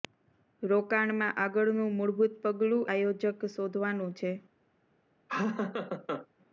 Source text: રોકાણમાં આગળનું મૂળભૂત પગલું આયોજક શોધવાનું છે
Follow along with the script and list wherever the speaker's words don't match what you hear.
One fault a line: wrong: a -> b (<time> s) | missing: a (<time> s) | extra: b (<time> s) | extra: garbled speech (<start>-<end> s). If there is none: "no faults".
no faults